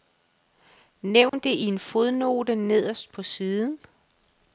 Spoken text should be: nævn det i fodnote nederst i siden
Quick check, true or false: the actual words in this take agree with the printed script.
false